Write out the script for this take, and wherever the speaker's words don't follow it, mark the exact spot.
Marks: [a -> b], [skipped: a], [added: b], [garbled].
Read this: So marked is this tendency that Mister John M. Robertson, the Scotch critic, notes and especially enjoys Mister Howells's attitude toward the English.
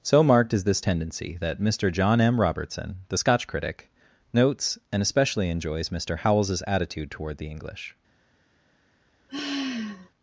So marked is this tendency that Mister John M. Robertson, the Scotch critic, notes and especially enjoys Mister Howells's attitude toward the English.